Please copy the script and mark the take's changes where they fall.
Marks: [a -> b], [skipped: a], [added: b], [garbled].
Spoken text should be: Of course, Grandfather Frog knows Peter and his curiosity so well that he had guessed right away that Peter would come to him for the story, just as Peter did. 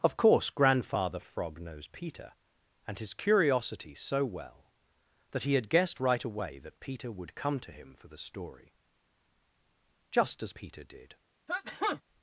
Of course, Grandfather Frog knows Peter and his curiosity so well that he had guessed right away that Peter would come to him for the story, just as Peter did.